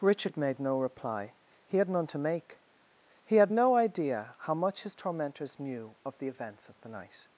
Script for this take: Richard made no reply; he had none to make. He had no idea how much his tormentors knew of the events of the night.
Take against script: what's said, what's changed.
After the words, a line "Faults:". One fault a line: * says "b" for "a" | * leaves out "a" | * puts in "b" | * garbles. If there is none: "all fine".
Richard made no reply; he had none to make. He had no idea how much his tormentors knew of the events of the night.
Faults:
all fine